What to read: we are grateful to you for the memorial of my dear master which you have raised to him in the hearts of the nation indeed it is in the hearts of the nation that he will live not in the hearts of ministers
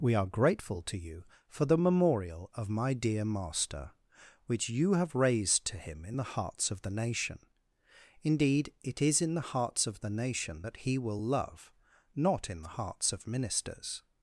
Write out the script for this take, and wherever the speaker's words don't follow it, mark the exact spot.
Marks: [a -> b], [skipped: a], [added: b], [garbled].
we are grateful to you for the memorial of my dear master which you have raised to him in the hearts of the nation indeed it is in the hearts of the nation that he will [live -> love] not in the hearts of ministers